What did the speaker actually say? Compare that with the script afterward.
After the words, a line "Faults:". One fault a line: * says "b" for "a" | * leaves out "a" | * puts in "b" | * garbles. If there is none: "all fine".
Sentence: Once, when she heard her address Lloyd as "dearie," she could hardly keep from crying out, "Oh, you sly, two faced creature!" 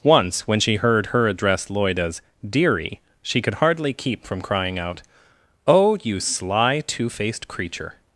Once, when she heard her address Lloyd as "dearie," she could hardly keep from crying out, "Oh, you sly, two faced creature!"
Faults:
all fine